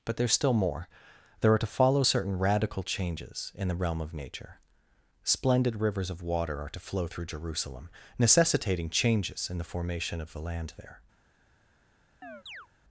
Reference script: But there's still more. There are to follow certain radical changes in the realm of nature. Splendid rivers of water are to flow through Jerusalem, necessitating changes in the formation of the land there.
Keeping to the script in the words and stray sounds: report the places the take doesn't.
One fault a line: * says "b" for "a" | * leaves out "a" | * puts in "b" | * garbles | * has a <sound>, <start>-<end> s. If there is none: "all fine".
* has a chirp, 12.2-12.7 s